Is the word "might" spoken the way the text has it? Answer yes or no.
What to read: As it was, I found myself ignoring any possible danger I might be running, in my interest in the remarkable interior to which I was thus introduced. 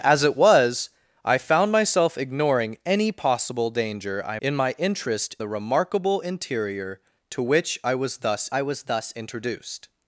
no